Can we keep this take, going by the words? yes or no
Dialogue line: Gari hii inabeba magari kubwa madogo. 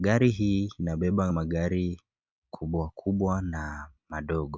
no